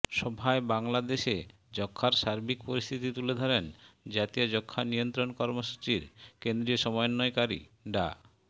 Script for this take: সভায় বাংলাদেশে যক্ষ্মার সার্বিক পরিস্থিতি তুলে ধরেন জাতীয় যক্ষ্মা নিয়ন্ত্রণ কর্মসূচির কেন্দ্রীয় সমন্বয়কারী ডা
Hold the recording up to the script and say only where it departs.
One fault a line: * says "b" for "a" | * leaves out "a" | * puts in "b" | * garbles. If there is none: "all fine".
all fine